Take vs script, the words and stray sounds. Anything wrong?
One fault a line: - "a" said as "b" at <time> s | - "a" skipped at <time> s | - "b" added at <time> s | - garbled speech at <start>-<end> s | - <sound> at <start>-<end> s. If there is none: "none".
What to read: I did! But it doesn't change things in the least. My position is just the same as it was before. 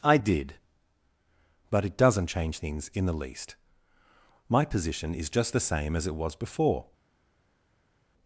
none